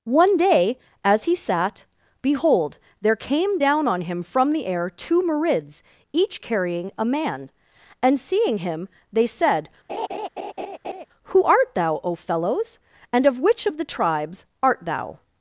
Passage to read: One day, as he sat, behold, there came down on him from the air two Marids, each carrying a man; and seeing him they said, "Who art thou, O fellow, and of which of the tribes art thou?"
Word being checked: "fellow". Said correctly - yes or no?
no